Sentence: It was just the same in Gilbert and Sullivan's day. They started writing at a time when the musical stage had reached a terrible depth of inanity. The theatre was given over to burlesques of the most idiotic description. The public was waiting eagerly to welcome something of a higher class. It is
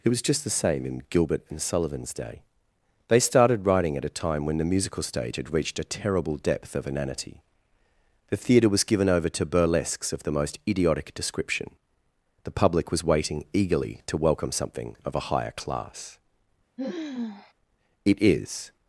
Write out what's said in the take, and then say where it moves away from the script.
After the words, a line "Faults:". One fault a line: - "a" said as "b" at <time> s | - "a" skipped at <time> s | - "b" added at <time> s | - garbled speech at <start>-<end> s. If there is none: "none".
It was just the same in Gilbert and Sullivan's day. They started writing at a time when the musical stage had reached a terrible depth of inanity. The theatre was given over to burlesques of the most idiotic description. The public was waiting eagerly to welcome something of a higher class. It is
Faults:
none